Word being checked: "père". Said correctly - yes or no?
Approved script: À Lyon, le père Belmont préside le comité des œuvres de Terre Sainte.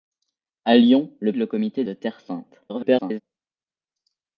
no